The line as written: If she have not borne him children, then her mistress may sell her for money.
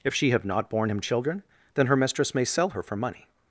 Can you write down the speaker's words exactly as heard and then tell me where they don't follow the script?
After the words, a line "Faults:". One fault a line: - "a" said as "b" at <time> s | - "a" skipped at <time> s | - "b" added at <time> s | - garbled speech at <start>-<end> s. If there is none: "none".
If she have not borne him children, then her mistress may sell her for money.
Faults:
none